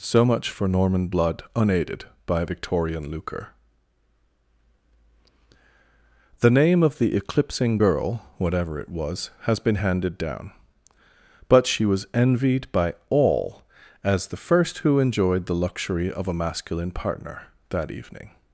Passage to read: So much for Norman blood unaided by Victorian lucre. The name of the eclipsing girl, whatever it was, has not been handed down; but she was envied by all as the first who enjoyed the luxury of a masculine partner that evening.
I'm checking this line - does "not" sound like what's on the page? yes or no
no